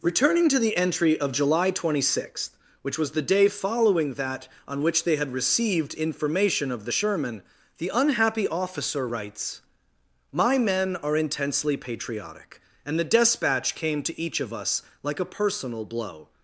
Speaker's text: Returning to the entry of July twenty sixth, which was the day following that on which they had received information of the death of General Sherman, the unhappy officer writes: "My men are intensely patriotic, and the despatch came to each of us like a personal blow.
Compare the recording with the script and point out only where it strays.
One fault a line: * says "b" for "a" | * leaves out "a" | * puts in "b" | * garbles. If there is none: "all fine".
* leaves out "death of General"